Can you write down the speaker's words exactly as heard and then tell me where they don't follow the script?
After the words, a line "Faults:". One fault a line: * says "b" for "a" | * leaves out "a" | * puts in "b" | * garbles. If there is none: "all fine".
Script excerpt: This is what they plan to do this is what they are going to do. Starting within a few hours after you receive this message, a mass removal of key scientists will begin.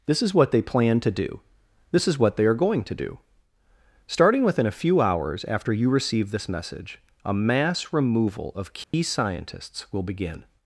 This is what they plan to do this is what they are going to do. Starting within a few hours after you receive this message, a mass removal of key scientists will begin.
Faults:
all fine